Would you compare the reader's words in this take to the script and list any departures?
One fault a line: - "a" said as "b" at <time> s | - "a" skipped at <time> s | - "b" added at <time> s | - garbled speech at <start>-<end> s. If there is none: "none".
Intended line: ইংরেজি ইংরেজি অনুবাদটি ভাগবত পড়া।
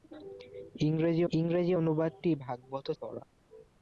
none